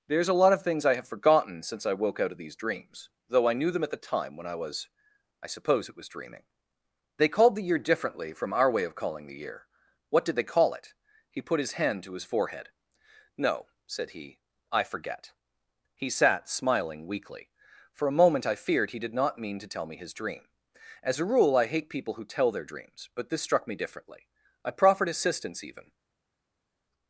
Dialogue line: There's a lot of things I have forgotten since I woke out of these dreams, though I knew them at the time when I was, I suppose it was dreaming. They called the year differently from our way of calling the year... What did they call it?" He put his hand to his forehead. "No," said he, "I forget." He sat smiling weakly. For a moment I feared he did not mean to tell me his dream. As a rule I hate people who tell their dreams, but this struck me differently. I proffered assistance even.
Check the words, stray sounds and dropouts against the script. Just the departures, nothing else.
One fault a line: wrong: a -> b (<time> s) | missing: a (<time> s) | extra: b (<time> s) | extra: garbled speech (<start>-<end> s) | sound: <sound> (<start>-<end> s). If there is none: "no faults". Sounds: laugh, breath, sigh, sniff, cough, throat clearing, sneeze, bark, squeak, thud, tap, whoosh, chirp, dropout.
no faults